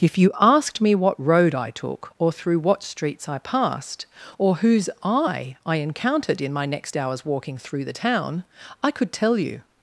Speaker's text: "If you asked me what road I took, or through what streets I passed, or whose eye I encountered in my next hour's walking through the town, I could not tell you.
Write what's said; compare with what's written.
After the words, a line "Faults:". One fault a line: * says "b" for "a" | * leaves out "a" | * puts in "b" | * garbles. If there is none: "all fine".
"If you asked me what road I took, or through what streets I passed, or whose eye I encountered in my next hour's walking through the town, I could tell you.
Faults:
* leaves out "not"